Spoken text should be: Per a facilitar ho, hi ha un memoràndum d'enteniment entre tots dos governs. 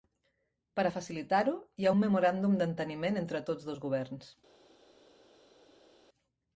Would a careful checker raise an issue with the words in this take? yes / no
no